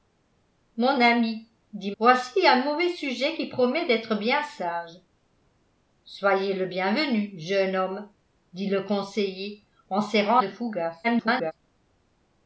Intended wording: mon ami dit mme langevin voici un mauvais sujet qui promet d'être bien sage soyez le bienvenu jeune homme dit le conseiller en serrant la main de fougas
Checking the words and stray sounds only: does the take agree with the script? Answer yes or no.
no